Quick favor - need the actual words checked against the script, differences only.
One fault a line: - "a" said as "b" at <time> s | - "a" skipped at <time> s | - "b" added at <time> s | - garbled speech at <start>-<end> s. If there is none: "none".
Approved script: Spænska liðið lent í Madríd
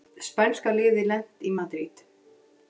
none